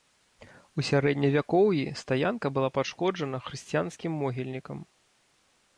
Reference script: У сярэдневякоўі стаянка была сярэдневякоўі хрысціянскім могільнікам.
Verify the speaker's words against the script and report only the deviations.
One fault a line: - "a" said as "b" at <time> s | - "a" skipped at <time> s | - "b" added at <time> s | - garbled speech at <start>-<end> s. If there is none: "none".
- "сярэдневякоўі" said as "пашкоджана" at 2.8 s